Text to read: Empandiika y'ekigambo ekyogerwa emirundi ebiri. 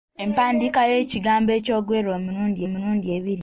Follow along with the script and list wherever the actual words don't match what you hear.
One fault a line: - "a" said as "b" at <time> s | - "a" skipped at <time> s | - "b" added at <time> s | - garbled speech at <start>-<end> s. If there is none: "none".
- "emirundi" added at 2.7 s